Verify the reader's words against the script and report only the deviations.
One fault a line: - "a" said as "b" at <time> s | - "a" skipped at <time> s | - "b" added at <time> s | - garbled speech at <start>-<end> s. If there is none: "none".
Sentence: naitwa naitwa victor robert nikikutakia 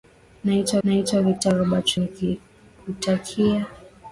none